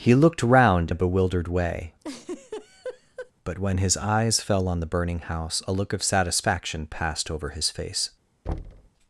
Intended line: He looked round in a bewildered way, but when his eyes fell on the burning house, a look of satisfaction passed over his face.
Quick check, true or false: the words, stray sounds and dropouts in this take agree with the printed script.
false